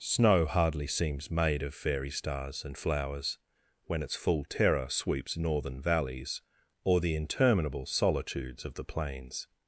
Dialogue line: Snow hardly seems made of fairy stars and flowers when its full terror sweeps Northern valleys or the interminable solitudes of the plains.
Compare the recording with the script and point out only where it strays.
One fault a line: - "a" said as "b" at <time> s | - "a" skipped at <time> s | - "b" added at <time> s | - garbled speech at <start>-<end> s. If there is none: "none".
none